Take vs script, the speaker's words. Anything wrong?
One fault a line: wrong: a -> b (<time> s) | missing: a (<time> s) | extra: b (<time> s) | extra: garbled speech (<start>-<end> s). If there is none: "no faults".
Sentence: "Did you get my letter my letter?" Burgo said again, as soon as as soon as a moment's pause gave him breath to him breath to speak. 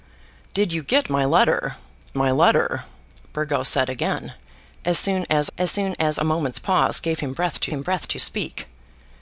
no faults